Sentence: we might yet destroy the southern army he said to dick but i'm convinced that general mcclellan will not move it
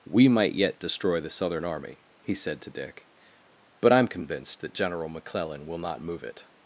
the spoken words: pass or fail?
pass